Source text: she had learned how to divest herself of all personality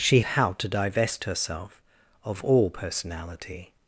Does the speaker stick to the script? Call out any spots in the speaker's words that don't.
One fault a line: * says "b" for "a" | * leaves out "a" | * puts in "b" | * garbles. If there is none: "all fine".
* leaves out "had learned"